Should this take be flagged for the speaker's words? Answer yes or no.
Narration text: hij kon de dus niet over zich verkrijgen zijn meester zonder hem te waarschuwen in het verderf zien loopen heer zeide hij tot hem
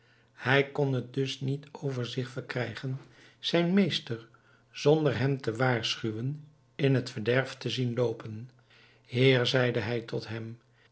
yes